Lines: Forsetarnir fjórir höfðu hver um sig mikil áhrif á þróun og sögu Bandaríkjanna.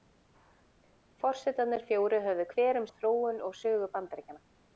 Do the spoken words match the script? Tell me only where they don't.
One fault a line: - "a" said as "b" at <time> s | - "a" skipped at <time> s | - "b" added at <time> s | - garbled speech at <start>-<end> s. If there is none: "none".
- "sig mikil áhrif" skipped at 2.9 s